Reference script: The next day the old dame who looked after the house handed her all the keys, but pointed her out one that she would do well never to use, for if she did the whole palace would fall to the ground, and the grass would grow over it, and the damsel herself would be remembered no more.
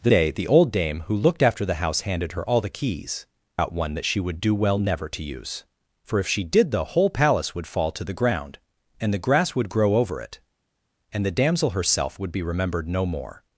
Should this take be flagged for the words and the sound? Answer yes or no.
yes